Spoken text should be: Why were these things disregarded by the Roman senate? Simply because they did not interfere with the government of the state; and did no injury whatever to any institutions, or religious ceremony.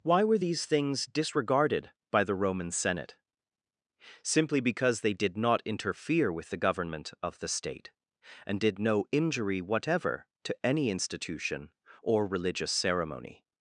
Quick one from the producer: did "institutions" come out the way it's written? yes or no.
no